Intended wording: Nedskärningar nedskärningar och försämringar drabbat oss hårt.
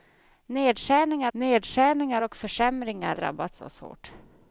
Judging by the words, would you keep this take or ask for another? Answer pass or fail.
pass